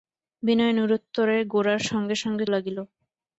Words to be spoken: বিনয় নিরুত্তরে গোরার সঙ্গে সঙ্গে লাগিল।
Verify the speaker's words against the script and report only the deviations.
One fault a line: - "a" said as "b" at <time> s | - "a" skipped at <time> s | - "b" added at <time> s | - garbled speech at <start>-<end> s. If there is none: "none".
none